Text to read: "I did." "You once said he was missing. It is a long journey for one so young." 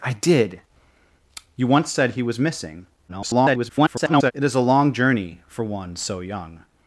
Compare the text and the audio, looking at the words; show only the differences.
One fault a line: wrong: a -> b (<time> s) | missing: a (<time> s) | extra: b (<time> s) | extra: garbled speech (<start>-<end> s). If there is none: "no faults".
extra: garbled speech (3.1-4.3 s)